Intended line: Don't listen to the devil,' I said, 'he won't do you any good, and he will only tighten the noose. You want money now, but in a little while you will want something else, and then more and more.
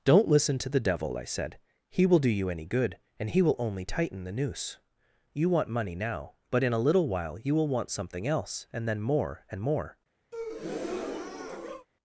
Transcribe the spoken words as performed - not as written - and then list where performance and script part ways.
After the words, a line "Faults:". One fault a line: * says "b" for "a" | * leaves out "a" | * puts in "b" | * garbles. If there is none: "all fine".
Don't listen to the devil,' I said, 'he will do you any good, and he will only tighten the noose. You want money now, but in a little while you will want something else, and then more and more.
Faults:
* says "will" for "won't"